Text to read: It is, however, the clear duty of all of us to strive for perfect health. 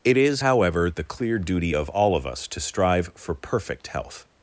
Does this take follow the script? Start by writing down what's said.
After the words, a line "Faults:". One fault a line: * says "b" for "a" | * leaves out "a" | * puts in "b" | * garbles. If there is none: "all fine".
It is, however, the clear duty of all of us to strive for perfect health.
Faults:
all fine